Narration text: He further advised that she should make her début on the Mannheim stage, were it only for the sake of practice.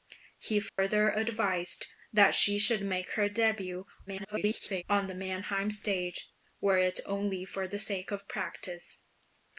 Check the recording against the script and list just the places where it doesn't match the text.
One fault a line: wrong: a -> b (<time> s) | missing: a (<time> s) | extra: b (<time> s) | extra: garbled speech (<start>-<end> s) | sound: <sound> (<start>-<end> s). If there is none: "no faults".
sound: dropout (0.7-0.8 s)
extra: garbled speech (4.1-4.8 s)